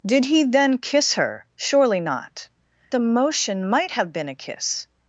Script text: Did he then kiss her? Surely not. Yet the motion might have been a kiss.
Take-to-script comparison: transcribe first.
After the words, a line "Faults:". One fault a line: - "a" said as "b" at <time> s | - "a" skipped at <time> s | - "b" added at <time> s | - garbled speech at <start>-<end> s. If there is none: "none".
Did he then kiss her? Surely not. The motion might have been a kiss.
Faults:
- "Yet" skipped at 2.5 s